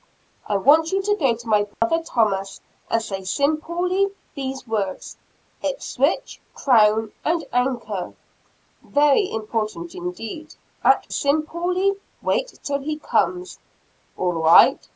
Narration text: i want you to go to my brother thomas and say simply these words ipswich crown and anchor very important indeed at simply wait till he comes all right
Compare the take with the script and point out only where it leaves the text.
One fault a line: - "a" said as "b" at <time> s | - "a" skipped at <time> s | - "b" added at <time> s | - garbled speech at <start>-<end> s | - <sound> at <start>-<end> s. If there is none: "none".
- dropout at 1.7-1.8 s